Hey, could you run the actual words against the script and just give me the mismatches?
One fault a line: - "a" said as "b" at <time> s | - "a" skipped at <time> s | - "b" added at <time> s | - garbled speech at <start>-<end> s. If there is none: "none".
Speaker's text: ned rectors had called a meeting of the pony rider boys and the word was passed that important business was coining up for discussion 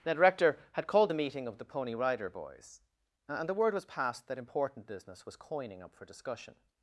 - "rectors" said as "rector" at 0.2 s